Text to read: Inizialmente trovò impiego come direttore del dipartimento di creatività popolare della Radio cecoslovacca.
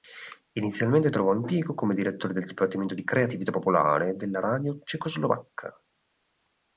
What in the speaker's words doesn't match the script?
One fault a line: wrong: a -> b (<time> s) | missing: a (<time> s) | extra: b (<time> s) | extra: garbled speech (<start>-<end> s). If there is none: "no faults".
no faults